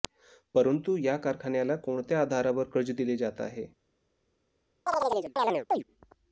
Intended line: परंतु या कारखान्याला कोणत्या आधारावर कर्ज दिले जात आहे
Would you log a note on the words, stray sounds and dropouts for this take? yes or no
yes